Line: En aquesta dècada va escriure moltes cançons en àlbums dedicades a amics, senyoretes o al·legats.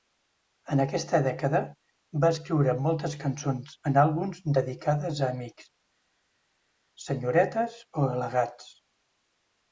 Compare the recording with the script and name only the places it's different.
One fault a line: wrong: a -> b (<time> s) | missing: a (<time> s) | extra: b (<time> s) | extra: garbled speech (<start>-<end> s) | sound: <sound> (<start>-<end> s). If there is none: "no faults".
no faults